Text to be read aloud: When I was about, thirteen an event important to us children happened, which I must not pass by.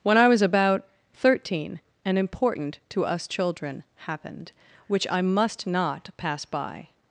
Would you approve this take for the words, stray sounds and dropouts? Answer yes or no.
no